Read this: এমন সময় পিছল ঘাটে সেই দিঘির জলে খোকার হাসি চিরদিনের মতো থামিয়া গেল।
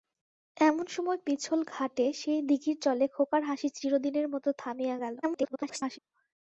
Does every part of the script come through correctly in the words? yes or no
no